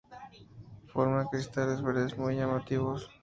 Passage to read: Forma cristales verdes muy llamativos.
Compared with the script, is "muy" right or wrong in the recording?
right